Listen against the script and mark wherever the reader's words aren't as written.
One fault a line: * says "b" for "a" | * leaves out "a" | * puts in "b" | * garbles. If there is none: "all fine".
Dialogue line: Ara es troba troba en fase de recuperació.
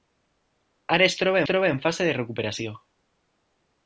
all fine